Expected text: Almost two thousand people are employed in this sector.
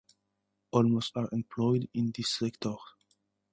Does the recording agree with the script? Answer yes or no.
no